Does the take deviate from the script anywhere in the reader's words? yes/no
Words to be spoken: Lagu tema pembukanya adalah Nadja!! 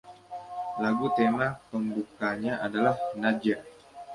no